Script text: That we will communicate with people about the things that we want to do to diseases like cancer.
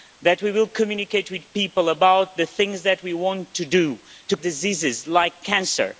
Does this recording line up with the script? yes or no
yes